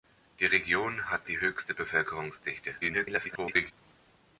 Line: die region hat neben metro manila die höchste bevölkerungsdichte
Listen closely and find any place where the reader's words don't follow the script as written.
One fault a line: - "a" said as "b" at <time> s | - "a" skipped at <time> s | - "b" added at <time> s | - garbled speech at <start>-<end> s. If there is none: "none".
- "neben metro manila" skipped at 1.2 s
- garbled speech at 2.8-3.7 s